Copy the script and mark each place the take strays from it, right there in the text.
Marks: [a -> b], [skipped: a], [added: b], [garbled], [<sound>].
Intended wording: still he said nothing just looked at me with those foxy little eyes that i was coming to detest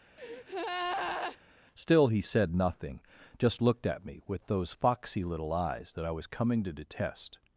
[breath] still he said nothing just looked at me with those foxy little eyes that i was coming to detest